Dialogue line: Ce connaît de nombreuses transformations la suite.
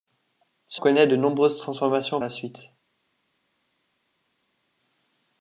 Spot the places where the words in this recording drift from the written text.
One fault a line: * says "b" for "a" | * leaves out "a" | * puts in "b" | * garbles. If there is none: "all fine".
all fine